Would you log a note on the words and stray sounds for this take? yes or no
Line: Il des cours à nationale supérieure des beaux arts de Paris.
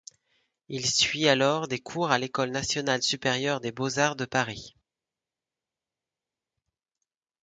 yes